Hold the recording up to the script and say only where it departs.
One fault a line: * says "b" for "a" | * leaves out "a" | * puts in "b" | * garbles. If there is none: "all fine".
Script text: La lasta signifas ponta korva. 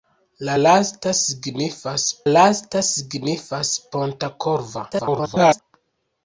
* puts in "lasta signifas"
* garbles